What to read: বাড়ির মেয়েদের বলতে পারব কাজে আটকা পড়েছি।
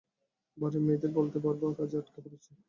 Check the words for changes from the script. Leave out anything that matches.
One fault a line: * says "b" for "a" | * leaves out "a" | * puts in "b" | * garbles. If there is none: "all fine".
all fine